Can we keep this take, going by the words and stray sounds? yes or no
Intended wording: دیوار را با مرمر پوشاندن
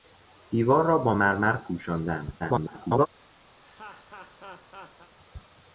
no